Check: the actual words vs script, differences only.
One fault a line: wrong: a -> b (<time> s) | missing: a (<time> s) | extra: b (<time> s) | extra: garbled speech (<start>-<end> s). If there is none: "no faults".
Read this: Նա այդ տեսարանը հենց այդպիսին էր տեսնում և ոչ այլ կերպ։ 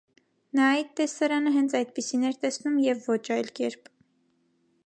no faults